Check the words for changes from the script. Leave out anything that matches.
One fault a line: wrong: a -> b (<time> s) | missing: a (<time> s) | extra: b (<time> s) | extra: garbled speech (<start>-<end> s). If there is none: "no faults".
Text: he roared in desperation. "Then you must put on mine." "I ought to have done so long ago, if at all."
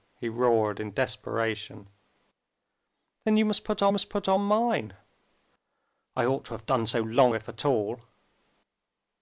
extra: must put on (3.9 s)
missing: ago (7.3 s)